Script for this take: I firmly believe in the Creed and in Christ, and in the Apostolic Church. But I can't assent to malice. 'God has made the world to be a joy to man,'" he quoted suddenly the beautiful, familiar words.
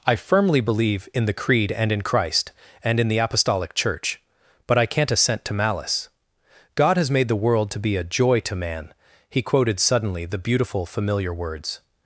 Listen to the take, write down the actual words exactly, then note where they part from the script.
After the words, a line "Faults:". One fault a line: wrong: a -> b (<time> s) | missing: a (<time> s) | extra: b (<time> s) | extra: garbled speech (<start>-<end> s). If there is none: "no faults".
I firmly believe in the Creed and in Christ, and in the Apostolic Church. But I can't assent to malice. 'God has made the world to be a joy to man,'" he quoted suddenly the beautiful, familiar words.
Faults:
no faults